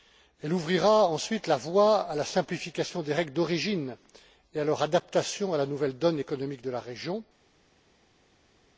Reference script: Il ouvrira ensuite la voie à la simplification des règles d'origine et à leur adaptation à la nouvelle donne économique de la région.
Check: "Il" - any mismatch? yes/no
yes